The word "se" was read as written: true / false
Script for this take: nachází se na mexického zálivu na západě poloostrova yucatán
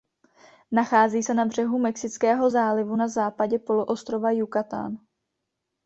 true